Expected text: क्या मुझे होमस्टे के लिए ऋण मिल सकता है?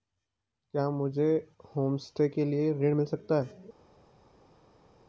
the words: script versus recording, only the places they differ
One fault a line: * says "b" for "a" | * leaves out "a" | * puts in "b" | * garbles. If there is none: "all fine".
all fine